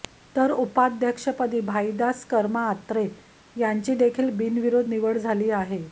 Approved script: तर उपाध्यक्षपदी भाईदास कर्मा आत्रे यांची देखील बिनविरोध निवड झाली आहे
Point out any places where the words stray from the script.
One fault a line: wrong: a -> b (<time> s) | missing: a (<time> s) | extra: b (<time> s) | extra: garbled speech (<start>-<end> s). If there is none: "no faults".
no faults